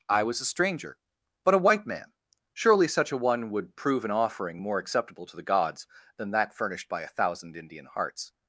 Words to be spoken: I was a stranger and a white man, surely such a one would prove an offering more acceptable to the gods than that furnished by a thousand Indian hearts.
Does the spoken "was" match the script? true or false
true